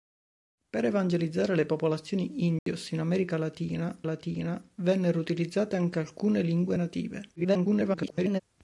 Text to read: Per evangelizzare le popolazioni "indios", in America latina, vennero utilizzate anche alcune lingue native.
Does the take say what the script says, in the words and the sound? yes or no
no